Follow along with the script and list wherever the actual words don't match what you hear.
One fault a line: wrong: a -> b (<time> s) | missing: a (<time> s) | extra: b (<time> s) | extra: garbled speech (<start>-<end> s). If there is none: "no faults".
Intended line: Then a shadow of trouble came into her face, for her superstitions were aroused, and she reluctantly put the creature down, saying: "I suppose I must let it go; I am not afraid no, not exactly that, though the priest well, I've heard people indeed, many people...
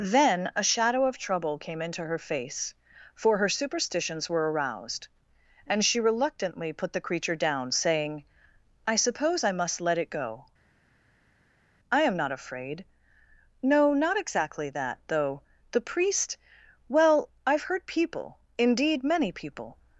no faults